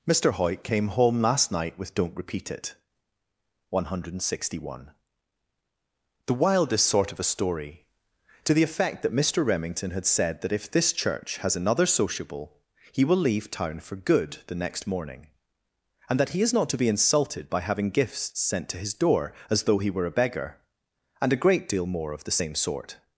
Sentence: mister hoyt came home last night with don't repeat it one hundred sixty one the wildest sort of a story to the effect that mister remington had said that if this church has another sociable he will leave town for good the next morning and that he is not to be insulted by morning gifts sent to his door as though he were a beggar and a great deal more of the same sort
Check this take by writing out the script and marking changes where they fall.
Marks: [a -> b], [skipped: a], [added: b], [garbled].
mister hoyt came home last night with don't repeat it one hundred sixty one the wildest sort of a story to the effect that mister remington had said that if this church has another sociable he will leave town for good the next morning and that he is not to be insulted by [morning -> having] gifts sent to his door as though he were a beggar and a great deal more of the same sort